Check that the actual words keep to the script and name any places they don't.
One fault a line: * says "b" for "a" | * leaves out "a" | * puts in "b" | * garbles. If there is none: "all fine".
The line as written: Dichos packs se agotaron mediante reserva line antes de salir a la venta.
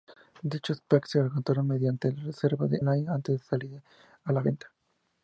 all fine